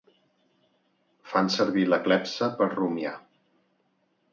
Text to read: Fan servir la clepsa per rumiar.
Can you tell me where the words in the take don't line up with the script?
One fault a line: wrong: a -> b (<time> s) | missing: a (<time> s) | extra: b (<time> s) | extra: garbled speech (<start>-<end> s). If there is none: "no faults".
no faults